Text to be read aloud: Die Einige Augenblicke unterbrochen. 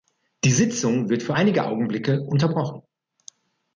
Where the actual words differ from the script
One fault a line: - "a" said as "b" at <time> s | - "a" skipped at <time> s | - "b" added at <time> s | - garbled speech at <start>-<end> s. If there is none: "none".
- "Sitzung wird für" added at 0.5 s